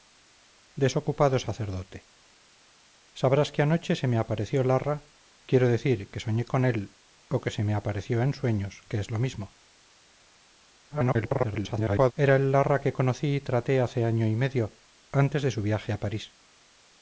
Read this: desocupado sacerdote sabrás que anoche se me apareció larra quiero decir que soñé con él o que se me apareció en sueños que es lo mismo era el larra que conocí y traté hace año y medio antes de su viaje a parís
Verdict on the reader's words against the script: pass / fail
fail